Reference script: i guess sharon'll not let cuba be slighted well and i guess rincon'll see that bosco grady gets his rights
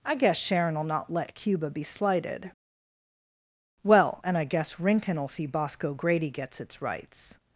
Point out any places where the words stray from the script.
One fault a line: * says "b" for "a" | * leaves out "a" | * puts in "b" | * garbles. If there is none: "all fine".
* leaves out "that"
* says "its" for "his"